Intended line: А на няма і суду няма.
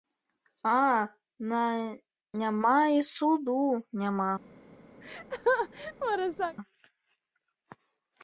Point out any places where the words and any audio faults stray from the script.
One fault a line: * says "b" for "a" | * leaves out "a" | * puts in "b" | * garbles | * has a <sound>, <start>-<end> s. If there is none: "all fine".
* has a laugh, 5.0-6.6 s